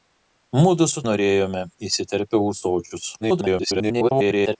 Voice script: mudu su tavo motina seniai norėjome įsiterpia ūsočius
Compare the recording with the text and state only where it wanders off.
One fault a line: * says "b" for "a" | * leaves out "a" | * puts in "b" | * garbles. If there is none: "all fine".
* leaves out "tavo motina seniai"
* garbles